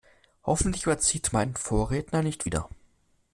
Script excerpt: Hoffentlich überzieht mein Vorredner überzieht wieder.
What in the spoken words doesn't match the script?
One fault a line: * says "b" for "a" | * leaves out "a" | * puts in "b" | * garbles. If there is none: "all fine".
* says "nicht" for "überzieht"